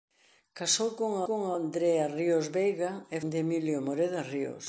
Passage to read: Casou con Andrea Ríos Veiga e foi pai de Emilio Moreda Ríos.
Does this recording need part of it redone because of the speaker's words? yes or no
yes